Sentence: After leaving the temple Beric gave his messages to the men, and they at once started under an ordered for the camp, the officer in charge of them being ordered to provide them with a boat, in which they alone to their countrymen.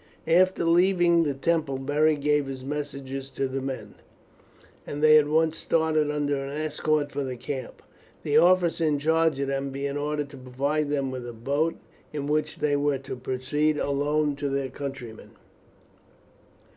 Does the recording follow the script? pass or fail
fail